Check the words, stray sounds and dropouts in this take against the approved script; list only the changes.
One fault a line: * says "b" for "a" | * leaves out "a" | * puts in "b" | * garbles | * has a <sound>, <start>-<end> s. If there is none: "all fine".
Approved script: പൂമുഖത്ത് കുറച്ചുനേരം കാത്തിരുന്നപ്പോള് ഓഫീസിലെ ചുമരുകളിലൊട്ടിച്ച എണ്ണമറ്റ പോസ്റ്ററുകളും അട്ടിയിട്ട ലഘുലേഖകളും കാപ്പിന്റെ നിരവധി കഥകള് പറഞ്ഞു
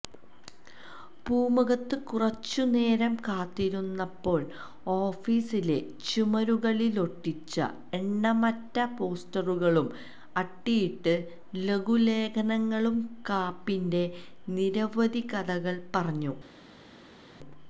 all fine